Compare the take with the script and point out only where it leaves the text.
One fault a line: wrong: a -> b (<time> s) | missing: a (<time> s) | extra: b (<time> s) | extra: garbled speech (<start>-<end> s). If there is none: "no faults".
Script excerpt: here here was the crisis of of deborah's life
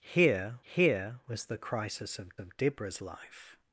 no faults